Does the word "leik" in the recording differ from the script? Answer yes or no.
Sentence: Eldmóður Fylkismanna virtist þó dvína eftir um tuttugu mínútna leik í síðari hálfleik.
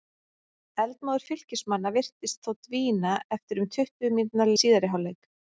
yes